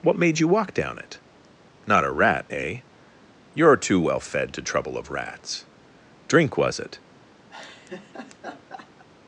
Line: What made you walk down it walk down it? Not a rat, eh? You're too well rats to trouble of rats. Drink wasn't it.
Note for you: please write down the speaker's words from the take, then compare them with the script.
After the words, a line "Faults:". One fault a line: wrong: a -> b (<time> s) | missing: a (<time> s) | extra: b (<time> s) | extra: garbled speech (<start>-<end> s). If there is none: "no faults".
What made you walk down it? Not a rat, eh? You're too well fed to trouble of rats. Drink was it.
Faults:
missing: walk down it (1.2 s)
wrong: rats -> fed (4.2 s)
wrong: wasn't -> was (6.6 s)